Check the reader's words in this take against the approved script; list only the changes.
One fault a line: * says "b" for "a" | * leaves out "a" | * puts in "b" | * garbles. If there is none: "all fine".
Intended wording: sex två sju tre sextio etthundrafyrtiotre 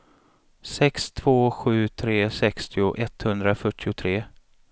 all fine